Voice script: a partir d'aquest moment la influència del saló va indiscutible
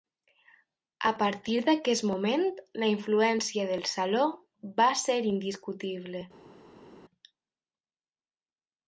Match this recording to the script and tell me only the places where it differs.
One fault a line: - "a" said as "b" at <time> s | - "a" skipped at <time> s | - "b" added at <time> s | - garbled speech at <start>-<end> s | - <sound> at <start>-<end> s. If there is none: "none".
- "ser" added at 5.0 s